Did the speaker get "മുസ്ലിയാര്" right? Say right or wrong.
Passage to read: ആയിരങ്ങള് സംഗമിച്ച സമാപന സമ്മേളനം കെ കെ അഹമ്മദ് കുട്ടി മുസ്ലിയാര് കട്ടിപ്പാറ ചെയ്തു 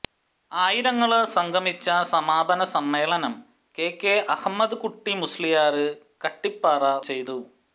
right